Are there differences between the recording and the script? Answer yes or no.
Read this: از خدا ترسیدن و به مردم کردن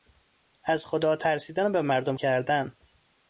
no